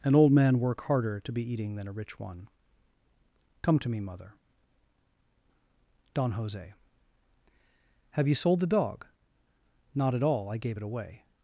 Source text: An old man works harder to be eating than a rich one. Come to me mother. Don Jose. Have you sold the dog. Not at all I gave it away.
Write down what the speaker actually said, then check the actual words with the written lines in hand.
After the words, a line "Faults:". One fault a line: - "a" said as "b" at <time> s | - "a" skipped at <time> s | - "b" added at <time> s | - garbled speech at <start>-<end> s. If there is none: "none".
An old man work harder to be eating than a rich one. Come to me mother. Don Jose. Have you sold the dog. Not at all I gave it away.
Faults:
- "works" said as "work" at 0.6 s